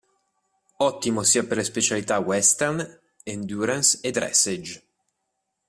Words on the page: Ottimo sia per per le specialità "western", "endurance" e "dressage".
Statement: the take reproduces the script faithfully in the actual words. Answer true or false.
false